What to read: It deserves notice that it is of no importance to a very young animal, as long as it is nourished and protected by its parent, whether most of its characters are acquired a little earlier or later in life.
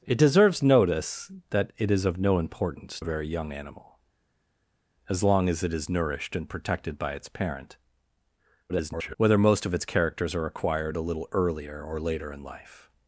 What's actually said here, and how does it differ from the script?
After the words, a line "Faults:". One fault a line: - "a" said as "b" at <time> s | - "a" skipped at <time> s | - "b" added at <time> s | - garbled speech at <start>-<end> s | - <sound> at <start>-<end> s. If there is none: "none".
It deserves notice that it is of no importance a very young animal, as long as it is nourished and protected by its parent, [garbled] whether most of its characters are acquired a little earlier or later in life.
Faults:
- "to" skipped at 3.0 s
- garbled speech at 8.7-9.1 s